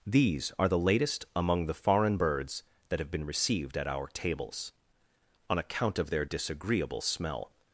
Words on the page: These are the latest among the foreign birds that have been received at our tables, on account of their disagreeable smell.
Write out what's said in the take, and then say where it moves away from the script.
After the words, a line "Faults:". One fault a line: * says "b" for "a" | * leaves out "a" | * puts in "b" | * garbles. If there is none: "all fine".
These are the latest among the foreign birds that have been received at our tables, on account of their disagreeable smell.
Faults:
all fine